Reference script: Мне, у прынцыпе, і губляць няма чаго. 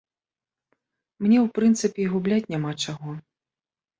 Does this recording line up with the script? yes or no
yes